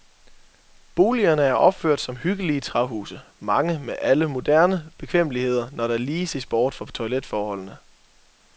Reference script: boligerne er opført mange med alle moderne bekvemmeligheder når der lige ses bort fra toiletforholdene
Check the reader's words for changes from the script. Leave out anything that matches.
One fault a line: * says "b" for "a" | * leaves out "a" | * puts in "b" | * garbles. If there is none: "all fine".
* puts in "som hyggelige træhuse"